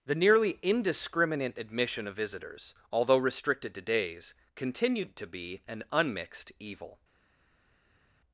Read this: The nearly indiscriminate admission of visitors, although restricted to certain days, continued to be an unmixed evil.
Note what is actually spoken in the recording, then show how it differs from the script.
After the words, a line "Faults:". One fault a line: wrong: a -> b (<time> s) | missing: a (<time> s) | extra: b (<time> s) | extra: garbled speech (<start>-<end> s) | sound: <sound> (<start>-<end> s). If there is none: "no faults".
The nearly indiscriminate admission of visitors, although restricted to days, continued to be an unmixed evil.
Faults:
missing: certain (3.8 s)